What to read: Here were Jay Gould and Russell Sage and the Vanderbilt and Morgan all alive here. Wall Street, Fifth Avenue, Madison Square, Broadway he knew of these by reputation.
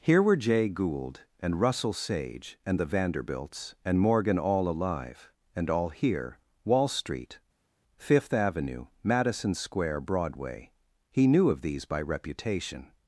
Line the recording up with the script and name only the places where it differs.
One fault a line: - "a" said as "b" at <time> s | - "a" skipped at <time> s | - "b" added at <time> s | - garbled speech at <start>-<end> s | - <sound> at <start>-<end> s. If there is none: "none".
- "Vanderbilt" said as "Vanderbilts" at 2.9 s
- "and all" added at 5.5 s